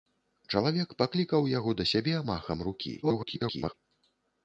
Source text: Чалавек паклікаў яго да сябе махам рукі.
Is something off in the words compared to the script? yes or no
yes